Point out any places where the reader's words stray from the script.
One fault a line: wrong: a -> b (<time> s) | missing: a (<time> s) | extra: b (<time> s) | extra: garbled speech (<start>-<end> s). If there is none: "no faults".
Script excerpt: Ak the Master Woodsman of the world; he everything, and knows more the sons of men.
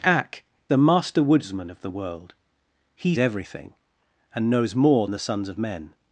no faults